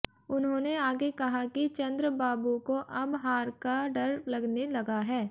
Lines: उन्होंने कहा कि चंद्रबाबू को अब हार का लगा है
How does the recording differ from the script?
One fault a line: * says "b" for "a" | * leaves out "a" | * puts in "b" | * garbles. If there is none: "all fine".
* puts in "आगे"
* puts in "डर लगने"